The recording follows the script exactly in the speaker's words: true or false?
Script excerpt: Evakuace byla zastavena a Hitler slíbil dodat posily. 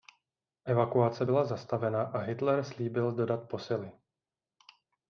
true